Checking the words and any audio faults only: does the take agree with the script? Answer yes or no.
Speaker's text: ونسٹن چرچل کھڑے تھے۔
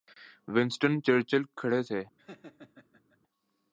no